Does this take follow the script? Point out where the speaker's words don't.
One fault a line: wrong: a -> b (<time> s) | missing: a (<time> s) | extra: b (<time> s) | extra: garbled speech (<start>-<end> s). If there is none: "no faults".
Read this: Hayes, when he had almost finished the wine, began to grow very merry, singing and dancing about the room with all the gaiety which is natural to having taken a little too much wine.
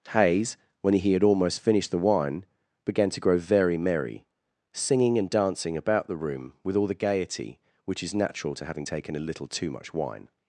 no faults